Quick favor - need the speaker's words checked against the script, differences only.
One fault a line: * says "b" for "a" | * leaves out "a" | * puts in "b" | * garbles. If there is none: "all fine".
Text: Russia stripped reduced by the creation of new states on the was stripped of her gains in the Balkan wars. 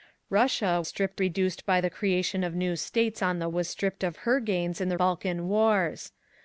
all fine